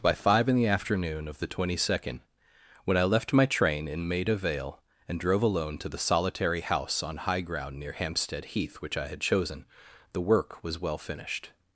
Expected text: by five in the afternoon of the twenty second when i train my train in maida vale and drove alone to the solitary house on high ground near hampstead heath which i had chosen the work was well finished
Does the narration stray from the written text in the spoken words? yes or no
yes